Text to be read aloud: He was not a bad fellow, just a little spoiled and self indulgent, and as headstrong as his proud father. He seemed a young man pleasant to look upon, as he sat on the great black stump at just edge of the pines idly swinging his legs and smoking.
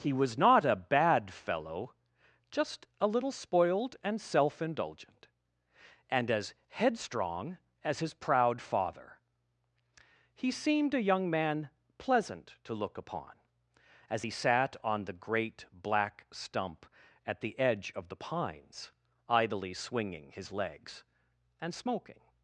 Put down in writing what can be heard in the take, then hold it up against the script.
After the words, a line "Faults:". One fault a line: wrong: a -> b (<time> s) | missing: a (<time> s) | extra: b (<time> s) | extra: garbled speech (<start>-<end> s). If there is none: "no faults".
He was not a bad fellow, just a little spoiled and self indulgent, and as headstrong as his proud father. He seemed a young man pleasant to look upon, as he sat on the great black stump at the edge of the pines idly swinging his legs and smoking.
Faults:
wrong: just -> the (17.4 s)